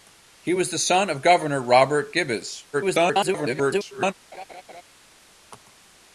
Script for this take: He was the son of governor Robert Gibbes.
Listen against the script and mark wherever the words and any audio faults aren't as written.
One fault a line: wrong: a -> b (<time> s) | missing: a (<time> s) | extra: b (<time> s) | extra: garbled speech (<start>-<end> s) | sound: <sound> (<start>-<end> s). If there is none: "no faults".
extra: garbled speech (2.7-4.1 s)
sound: laugh (4.3-4.8 s)